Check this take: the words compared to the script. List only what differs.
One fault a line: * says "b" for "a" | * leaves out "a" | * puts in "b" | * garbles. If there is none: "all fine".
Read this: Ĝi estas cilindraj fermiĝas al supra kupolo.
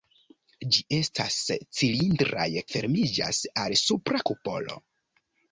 all fine